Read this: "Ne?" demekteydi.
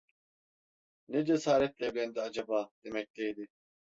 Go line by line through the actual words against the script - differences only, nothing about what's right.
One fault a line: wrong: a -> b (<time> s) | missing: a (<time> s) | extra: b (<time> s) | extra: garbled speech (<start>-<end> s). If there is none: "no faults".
extra: cesaretle evlendi acaba (1.2 s)